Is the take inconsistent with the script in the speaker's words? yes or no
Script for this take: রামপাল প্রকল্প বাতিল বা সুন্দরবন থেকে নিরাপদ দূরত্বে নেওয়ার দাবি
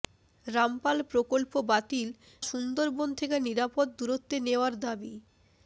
yes